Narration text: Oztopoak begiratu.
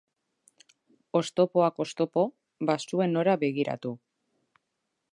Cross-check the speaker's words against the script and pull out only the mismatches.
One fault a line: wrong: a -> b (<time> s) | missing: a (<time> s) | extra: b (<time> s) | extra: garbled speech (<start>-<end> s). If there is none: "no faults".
extra: oztopo bazuen nora (1.9 s)